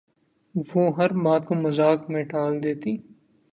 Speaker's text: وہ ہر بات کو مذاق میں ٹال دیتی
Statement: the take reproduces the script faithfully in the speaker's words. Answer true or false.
true